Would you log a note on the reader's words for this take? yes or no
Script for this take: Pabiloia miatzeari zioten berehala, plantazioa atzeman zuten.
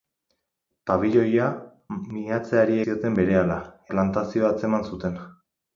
no